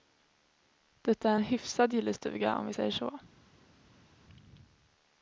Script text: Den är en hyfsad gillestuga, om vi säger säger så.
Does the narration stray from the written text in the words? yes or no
yes